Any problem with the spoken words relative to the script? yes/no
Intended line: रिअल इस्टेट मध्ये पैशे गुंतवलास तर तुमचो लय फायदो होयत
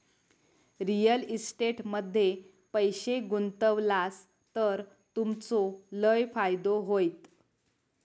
no